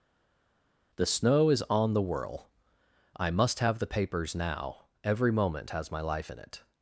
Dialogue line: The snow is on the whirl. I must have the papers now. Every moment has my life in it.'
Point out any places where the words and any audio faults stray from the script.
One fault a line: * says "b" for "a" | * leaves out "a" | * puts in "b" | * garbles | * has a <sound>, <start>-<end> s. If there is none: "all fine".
all fine